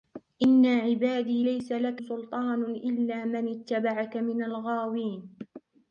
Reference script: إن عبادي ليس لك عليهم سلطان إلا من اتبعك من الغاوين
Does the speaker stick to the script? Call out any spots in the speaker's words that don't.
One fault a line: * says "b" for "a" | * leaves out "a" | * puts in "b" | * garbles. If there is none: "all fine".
* leaves out "عليهم"